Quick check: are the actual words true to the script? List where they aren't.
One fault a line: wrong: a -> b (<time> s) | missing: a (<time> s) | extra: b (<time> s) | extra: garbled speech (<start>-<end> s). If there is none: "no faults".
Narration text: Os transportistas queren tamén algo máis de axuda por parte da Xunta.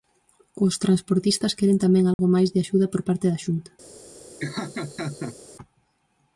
no faults